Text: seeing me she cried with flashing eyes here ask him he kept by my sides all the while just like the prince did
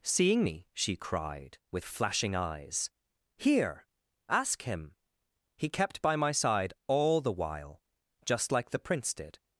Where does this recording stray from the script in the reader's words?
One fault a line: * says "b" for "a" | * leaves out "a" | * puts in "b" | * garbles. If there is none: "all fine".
* says "side" for "sides"